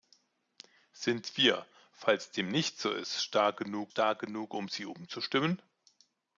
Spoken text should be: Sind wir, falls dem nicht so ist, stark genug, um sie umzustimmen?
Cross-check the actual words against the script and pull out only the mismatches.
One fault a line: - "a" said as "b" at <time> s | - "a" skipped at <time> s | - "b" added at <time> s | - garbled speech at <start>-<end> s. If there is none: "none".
- "stark genug" added at 3.9 s